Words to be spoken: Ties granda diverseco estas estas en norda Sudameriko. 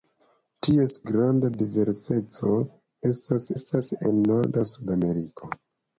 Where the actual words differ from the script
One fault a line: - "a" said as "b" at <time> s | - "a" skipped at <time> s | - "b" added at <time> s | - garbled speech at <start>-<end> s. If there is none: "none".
none